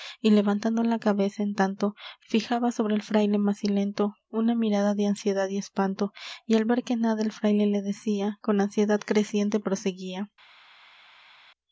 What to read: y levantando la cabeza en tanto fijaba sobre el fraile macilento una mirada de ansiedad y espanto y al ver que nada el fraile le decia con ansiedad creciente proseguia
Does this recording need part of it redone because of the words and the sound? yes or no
no